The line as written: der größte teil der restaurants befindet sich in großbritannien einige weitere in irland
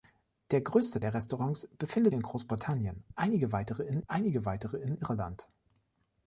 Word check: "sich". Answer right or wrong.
wrong